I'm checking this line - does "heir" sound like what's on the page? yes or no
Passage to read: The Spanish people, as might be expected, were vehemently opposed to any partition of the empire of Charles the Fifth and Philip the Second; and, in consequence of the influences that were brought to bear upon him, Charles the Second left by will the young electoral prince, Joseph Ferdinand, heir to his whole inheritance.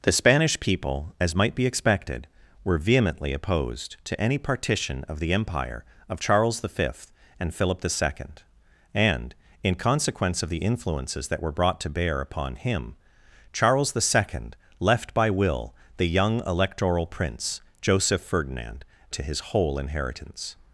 no